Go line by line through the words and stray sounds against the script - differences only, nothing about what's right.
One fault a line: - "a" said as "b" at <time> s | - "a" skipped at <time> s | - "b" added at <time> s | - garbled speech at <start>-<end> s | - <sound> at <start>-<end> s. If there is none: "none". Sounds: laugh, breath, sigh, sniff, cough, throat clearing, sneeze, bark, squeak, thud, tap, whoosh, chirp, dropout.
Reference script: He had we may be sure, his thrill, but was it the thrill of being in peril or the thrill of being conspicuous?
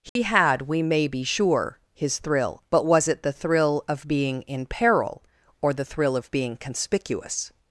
- dropout at 0.1-0.2 s